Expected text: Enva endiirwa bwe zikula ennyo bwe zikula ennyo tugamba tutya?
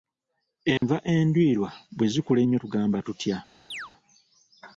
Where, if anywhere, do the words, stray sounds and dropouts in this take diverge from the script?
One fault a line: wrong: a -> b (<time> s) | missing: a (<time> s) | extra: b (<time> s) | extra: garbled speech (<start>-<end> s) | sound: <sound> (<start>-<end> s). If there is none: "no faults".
sound: dropout (0.8-0.8 s)
missing: bwe zikula ennyo (2.6 s)
sound: chirp (3.7-3.9 s)